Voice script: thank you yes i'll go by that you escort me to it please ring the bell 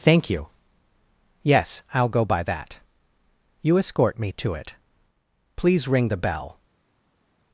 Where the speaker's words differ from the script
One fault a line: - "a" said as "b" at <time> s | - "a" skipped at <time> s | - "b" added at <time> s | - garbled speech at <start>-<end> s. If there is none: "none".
none